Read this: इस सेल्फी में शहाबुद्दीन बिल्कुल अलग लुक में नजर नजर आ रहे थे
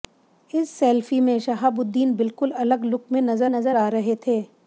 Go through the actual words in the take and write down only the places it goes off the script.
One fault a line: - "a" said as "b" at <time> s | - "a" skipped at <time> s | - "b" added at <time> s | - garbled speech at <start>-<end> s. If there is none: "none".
none